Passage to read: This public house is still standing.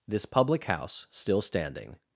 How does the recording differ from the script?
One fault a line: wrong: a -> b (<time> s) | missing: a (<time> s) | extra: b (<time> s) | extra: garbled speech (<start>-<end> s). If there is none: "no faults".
missing: is (1.1 s)